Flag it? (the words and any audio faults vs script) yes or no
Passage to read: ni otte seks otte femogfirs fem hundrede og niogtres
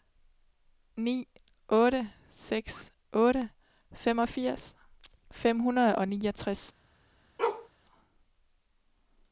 yes